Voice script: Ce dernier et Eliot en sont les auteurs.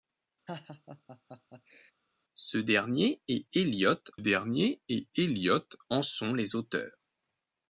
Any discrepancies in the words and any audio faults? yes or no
yes